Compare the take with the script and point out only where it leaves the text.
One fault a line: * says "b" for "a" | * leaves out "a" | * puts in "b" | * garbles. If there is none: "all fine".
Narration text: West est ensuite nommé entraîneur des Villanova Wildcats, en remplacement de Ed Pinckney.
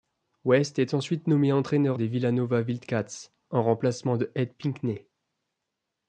all fine